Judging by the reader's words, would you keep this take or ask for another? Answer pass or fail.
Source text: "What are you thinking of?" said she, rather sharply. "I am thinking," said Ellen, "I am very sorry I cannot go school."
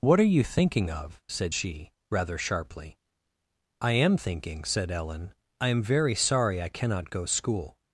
pass